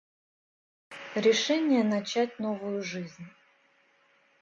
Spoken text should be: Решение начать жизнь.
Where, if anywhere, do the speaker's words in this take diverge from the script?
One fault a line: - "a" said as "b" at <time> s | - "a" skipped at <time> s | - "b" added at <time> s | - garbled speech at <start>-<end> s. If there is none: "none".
- "новую" added at 2.4 s